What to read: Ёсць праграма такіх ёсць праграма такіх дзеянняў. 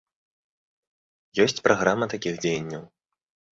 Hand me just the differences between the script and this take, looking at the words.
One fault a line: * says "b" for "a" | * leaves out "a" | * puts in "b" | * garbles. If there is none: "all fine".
* leaves out "ёсць праграма такіх"